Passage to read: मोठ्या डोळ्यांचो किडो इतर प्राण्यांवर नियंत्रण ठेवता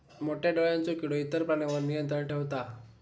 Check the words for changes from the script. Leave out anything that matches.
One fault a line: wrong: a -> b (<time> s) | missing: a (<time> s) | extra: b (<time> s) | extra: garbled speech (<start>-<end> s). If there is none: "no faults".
no faults